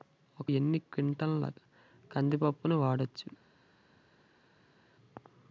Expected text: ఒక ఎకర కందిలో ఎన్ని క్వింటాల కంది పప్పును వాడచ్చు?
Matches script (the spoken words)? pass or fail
fail